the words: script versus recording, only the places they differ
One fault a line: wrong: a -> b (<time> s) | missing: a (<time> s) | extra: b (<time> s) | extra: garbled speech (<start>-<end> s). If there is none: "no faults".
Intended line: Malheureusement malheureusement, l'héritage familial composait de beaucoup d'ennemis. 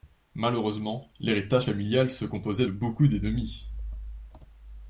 missing: malheureusement (1.1 s)
extra: se (2.1 s)